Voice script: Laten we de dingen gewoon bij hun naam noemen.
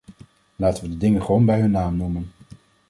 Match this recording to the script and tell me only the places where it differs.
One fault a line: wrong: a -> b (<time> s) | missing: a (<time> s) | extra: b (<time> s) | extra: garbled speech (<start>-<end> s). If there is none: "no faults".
no faults